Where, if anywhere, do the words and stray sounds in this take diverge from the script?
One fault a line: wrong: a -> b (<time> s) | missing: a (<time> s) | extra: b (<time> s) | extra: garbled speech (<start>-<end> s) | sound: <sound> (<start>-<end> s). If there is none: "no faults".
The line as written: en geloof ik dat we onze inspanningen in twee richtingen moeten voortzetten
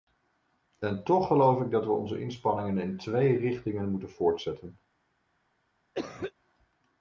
extra: toch (1.0 s)
sound: cough (5.9-6.3 s)